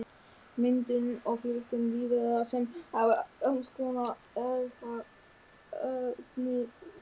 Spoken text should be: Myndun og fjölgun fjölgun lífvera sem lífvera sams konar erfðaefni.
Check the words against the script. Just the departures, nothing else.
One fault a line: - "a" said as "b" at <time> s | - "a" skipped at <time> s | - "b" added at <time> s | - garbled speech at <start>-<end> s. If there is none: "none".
- "fjölgun" skipped at 1.8 s
- "lífvera" said as "hafa" at 3.0 s